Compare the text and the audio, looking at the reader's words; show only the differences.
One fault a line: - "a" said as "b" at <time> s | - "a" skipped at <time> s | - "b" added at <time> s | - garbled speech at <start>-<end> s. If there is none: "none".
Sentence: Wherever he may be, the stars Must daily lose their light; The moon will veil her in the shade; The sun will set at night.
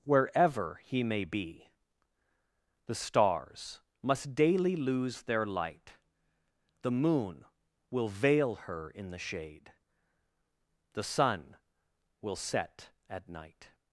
none